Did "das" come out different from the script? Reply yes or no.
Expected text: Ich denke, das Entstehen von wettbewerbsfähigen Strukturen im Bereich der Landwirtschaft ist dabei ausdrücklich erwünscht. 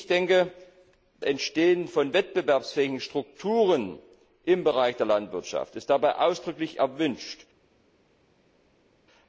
yes